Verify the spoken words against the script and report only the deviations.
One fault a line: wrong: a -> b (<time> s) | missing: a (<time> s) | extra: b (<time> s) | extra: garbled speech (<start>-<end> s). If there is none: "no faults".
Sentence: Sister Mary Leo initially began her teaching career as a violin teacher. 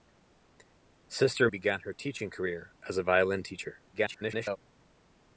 missing: Mary Leo initially (1.5 s)
extra: garbled speech (3.9-4.6 s)